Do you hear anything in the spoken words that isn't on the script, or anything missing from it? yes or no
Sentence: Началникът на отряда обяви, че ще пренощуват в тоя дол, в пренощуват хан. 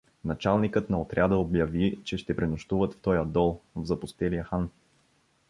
yes